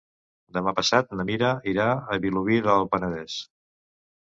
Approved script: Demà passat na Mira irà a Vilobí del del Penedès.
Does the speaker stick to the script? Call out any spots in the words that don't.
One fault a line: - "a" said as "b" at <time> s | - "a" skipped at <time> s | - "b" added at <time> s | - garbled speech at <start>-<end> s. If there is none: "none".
- "del" skipped at 2.9 s